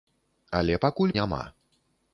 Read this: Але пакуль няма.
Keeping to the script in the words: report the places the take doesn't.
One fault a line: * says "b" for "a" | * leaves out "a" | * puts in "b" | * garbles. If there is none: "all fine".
all fine